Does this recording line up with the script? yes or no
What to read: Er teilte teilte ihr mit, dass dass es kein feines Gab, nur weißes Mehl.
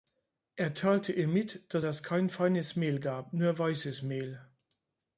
no